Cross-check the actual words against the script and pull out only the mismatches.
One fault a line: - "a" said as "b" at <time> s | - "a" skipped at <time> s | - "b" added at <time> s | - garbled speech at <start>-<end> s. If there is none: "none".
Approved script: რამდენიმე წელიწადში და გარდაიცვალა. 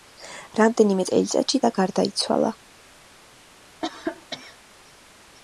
none